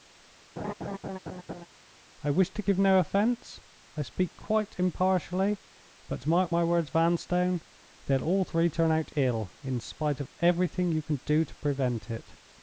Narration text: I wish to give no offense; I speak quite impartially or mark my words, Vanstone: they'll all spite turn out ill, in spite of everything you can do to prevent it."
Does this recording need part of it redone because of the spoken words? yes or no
yes